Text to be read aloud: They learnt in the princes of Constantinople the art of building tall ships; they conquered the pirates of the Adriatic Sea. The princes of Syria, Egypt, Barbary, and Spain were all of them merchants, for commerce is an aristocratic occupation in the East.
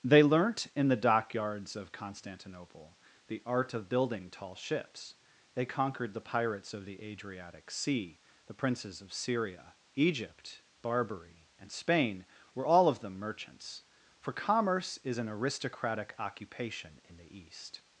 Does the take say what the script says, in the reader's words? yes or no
no